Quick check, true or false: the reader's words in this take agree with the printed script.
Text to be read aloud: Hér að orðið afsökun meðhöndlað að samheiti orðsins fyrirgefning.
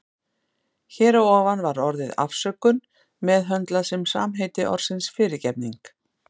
false